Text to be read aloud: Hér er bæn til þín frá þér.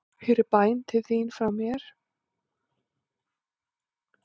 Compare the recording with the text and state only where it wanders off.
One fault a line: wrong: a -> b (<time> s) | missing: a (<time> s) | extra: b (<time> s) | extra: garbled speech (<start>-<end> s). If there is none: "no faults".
wrong: þér -> mér (1.6 s)